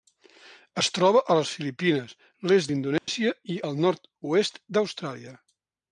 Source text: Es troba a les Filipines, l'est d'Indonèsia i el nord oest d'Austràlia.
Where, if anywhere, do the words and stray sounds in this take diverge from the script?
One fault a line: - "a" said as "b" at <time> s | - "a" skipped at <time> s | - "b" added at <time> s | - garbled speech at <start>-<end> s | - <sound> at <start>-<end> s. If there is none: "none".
- dropout at 3.0-3.1 s